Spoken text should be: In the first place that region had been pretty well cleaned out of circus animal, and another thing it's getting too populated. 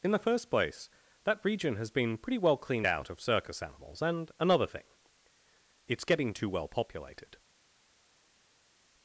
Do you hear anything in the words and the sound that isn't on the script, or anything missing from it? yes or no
yes